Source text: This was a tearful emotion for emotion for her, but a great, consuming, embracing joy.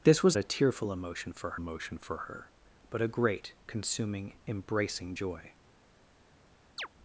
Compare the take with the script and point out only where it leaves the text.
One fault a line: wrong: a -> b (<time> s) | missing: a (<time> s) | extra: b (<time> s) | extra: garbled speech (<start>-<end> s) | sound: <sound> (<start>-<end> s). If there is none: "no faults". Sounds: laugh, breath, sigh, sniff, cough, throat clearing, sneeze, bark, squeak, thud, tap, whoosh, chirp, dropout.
sound: chirp (6.8-6.9 s)